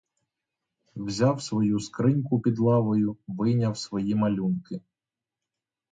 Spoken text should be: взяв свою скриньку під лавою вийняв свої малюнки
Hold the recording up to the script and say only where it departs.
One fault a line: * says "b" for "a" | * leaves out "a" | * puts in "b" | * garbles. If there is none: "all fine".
all fine